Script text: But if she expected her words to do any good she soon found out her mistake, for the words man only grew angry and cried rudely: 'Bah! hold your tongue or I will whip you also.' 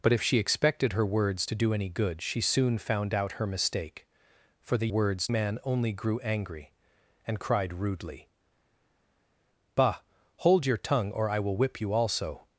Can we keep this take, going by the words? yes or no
yes